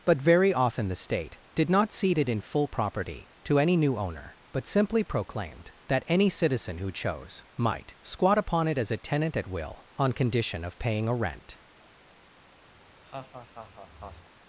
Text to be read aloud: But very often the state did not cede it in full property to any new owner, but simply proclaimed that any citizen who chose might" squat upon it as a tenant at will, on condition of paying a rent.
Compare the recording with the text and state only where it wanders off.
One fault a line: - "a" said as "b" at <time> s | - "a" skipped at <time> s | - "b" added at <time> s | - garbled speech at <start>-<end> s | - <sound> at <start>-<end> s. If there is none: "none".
- laugh at 12.8-14.3 s